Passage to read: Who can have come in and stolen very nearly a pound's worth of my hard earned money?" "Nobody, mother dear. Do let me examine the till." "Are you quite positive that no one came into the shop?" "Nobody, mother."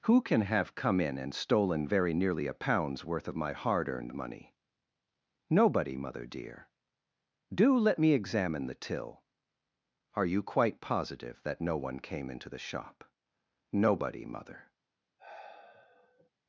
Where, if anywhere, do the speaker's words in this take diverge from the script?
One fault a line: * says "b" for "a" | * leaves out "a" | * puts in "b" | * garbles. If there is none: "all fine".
all fine